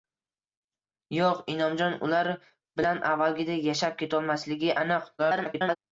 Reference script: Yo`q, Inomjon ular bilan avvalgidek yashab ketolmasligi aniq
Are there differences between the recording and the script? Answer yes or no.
yes